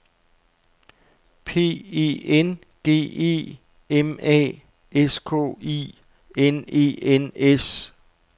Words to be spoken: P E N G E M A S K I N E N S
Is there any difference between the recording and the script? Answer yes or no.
no